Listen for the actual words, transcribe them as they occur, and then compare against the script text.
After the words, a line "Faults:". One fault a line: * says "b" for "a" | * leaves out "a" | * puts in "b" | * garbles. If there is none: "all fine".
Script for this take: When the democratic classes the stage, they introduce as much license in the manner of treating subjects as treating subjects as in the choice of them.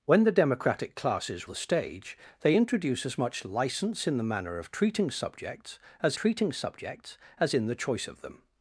When the democratic classes the stage, they introduce as much license in the manner of treating subjects as treating subjects as in the choice of them.
Faults:
all fine